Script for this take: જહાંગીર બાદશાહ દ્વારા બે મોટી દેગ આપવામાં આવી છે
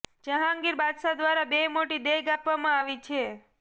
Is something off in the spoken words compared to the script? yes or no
no